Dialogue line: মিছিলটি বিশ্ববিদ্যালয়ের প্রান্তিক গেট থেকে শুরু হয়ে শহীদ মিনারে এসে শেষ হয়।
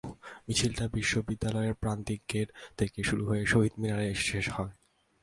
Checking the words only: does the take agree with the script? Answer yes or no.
yes